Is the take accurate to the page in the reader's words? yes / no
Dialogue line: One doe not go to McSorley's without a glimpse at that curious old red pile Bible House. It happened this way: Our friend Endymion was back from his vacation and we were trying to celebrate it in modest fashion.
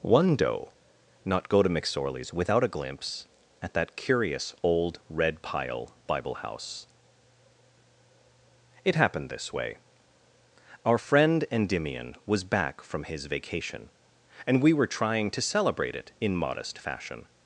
yes